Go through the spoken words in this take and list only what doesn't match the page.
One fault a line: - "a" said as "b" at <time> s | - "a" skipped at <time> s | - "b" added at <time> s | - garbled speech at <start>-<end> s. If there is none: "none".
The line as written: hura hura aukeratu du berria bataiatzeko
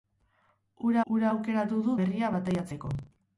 none